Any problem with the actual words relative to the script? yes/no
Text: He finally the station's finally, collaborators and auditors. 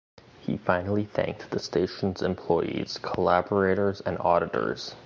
yes